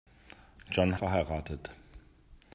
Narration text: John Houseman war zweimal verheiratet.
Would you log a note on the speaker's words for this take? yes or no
yes